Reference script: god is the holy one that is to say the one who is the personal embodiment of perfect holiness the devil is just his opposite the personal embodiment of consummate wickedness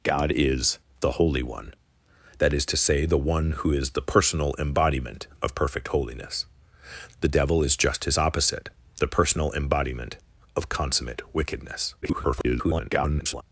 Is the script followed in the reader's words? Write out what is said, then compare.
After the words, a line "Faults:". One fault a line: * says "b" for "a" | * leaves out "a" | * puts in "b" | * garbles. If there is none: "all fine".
god is the holy one that is to say the one who is the personal embodiment of perfect holiness the devil is just his opposite the personal embodiment of consummate wickedness [garbled]
Faults:
* garbles